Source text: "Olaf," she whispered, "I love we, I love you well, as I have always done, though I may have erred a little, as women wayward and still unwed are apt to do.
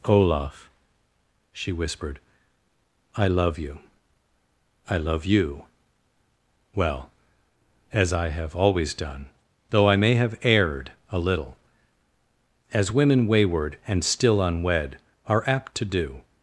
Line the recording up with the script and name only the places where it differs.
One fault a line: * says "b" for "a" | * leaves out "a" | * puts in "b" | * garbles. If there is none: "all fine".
* says "you" for "we"